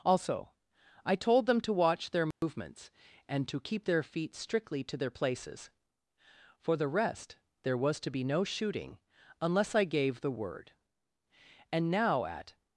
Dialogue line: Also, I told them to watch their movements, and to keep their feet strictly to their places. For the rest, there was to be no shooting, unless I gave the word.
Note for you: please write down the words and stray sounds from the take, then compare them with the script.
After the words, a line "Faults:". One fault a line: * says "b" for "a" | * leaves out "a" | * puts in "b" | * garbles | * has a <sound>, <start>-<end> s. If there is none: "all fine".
Also, I told them to watch their movements, and to keep their feet strictly to their places. For the rest, there was to be no shooting, unless I gave the word. "And now at
Faults:
* has a dropout, 2.3-2.4 s
* puts in "And now at"